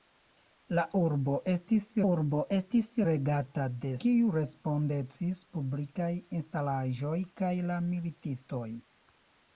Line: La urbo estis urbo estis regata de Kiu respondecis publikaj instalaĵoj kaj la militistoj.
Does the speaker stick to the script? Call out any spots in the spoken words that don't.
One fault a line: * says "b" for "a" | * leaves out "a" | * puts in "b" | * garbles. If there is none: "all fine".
all fine